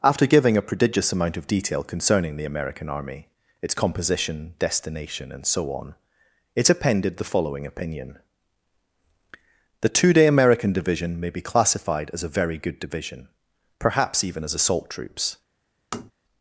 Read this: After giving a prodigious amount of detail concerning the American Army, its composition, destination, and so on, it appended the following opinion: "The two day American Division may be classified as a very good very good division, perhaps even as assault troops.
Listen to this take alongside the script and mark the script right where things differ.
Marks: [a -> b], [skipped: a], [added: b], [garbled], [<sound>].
After giving a prodigious amount of detail concerning the American Army, its composition, destination, and so on, it appended the following opinion: "The two day American Division may be classified as a very good [skipped: very good] division, perhaps even as assault troops. [tap]